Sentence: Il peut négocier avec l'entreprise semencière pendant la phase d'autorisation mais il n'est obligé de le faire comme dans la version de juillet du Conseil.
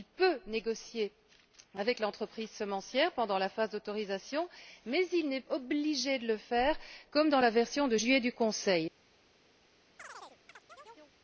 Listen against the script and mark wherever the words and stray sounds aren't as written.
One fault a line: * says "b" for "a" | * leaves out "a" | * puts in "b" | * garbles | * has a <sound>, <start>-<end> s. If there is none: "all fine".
* has a chirp, 10.0-11.1 s